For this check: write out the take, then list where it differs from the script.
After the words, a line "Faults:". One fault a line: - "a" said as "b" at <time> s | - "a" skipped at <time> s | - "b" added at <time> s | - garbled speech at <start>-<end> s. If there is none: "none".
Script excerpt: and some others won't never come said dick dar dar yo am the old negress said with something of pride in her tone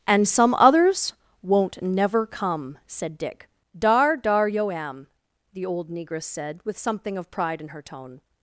and some others won't never come said dick dar dar yo am the old negress said with something of pride in her tone
Faults:
none